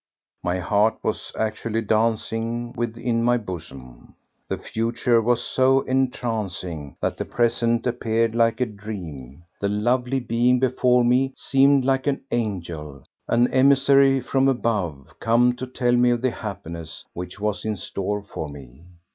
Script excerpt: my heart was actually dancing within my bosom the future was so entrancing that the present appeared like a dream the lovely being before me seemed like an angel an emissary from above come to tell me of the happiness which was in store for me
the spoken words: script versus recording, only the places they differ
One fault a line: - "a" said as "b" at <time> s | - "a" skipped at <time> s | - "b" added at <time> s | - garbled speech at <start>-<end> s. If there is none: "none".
none